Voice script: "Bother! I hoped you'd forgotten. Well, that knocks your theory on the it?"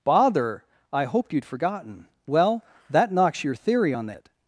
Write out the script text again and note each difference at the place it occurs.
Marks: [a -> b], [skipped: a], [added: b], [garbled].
"Bother! I hoped you'd forgotten. Well, that knocks your theory on the it?"